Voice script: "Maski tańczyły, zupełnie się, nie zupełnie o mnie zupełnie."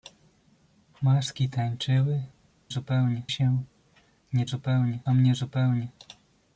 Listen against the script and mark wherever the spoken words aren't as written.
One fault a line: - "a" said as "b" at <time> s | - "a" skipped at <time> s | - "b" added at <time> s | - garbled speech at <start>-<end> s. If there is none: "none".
none